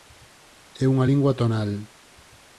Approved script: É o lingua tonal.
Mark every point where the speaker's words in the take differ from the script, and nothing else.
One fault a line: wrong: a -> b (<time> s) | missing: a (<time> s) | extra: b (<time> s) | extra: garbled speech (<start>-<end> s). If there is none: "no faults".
wrong: o -> unha (0.9 s)